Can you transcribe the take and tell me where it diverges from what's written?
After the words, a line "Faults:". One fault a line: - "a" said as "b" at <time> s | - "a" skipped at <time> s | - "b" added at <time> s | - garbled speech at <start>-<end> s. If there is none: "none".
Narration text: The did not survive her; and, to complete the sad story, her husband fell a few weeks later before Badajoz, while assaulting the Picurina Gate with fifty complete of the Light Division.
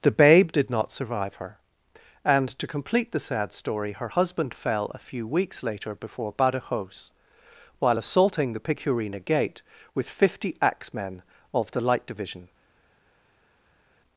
The babe did not survive her; and, to complete the sad story, her husband fell a few weeks later before Badajoz, while assaulting the Picurina Gate with fifty axemen of the Light Division.
Faults:
- "babe" added at 0.1 s
- "complete" said as "axemen" at 10.6 s